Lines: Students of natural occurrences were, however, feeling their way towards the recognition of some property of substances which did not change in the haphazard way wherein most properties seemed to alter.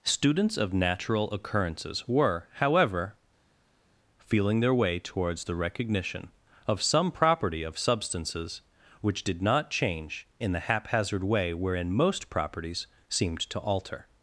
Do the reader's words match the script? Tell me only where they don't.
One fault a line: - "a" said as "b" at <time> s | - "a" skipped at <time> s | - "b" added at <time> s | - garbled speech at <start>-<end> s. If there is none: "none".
none